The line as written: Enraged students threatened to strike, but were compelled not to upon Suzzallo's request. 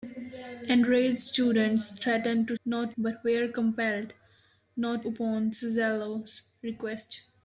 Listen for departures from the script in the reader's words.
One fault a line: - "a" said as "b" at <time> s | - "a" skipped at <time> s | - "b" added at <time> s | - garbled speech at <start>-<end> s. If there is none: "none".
- "strike" said as "not" at 2.6 s
- "to" skipped at 5.1 s